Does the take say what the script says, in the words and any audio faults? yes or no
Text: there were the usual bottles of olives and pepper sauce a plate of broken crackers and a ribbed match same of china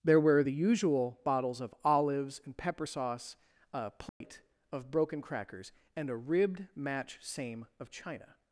no